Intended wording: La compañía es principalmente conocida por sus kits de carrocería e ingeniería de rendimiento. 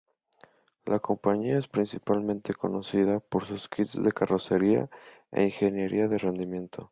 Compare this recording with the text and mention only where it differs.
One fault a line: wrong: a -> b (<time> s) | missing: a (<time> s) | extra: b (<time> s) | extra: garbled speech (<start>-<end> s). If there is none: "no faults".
no faults